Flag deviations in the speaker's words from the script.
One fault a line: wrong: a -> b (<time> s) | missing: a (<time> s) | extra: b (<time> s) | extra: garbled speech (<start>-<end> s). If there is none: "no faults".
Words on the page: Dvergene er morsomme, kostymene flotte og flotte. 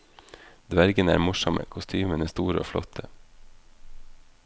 wrong: flotte -> store (2.3 s)